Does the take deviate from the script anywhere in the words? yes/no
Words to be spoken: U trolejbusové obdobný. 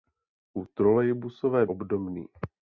no